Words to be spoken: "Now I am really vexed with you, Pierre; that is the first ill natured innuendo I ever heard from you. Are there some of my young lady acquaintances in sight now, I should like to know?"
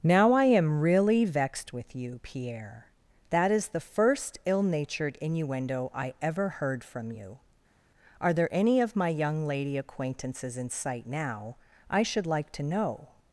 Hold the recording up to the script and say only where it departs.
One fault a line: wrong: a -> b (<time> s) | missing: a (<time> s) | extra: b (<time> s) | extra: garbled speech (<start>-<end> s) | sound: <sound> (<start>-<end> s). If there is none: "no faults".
wrong: some -> any (8.5 s)